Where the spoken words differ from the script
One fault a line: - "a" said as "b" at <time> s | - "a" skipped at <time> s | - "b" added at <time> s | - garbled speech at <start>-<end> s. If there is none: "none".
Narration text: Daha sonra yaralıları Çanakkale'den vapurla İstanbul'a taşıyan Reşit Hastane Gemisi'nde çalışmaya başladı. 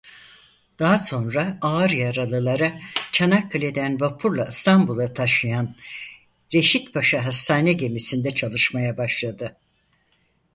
- "ağır" added at 1.6 s
- "Paşa" added at 6.9 s